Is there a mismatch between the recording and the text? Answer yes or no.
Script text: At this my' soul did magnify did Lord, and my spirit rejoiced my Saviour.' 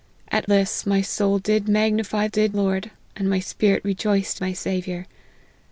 no